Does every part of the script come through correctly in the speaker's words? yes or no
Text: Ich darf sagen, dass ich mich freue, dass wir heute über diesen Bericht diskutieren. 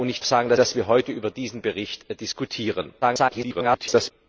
no